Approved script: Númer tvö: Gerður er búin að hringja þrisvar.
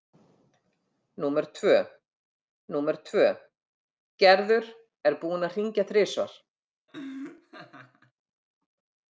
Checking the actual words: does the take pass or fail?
fail